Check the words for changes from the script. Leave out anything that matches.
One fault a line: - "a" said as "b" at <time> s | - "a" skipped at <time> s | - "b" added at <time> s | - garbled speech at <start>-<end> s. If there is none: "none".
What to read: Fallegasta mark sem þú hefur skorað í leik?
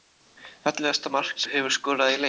- "sem" skipped at 1.4 s